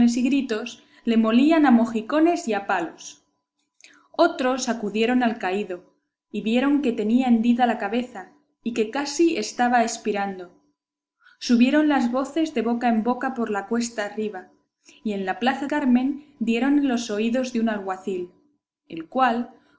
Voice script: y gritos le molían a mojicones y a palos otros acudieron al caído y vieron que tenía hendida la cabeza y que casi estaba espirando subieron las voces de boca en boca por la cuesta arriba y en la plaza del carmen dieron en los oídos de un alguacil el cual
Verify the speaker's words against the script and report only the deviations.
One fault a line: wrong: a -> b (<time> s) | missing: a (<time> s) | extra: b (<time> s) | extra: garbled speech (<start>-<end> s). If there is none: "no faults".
missing: del (15.7 s)